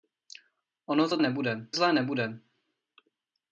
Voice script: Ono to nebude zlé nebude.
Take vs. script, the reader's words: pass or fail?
pass